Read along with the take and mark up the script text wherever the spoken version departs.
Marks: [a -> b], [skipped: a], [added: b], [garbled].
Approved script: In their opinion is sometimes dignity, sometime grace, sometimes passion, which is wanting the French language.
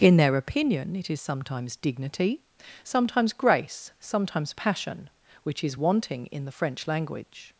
In their opinion [added: it] is sometimes dignity, [sometime -> sometimes] grace, sometimes passion, which is wanting [added: in] the French language.